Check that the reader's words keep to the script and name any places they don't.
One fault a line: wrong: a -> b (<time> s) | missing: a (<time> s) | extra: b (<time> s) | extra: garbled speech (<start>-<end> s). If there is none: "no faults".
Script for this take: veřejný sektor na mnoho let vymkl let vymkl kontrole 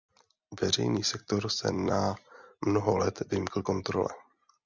extra: se (1.5 s)
missing: let vymkl (3.6 s)